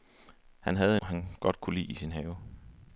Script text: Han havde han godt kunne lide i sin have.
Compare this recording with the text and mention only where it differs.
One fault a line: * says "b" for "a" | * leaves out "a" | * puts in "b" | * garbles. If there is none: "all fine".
all fine